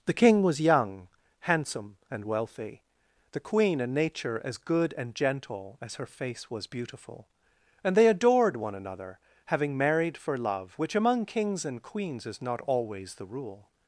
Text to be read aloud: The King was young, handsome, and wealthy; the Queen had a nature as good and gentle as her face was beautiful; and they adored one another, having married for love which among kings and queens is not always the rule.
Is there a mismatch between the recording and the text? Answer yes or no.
yes